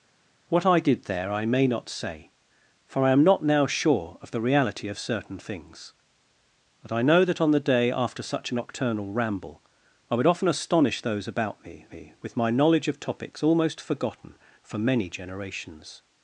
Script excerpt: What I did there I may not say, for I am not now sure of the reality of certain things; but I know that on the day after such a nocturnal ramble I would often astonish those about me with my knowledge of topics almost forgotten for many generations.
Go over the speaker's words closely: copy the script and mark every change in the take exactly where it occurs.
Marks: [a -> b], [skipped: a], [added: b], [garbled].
What I did there I may not say, for I am not now sure of the reality of certain things; but I know that on the day after such a nocturnal ramble I would often astonish those about me [added: me] with my knowledge of topics almost forgotten for many generations.